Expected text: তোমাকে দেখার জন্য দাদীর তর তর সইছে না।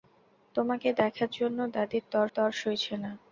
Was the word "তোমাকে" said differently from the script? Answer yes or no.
no